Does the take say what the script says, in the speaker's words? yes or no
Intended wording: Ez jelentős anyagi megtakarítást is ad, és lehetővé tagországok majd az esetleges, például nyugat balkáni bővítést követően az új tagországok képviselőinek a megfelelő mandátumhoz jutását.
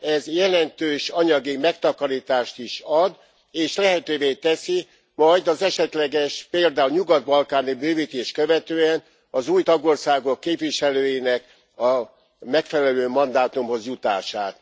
no